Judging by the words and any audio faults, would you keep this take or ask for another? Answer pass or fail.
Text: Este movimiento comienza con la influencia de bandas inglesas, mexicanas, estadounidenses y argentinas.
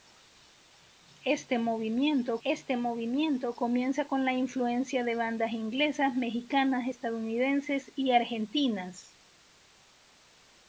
fail